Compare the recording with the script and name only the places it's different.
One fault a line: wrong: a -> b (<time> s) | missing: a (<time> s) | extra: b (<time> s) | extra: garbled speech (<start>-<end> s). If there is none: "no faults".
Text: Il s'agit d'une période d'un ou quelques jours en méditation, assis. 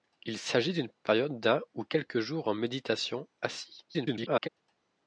extra: garbled speech (3.9-4.5 s)